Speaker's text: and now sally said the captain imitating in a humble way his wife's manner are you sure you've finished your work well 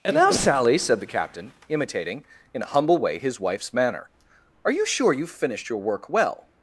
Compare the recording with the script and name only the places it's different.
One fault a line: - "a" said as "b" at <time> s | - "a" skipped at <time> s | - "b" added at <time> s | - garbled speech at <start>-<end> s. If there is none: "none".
none